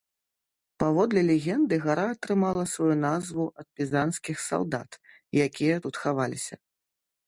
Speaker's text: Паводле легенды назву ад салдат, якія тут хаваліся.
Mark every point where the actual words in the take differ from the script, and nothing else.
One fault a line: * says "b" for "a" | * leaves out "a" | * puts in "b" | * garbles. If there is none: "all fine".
* puts in "гара атрымала сваю"
* puts in "пізанскіх"